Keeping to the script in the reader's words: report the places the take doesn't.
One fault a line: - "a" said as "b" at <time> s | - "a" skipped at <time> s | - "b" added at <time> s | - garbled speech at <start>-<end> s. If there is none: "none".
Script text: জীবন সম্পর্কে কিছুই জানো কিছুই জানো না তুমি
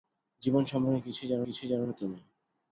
none